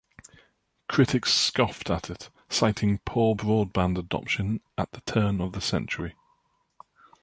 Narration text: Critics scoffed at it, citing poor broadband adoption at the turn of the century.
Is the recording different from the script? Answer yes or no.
no